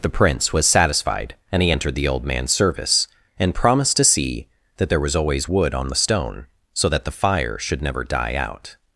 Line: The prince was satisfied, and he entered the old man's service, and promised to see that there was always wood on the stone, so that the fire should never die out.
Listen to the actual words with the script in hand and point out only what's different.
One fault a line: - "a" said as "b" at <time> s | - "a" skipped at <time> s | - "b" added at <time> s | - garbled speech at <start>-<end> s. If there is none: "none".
none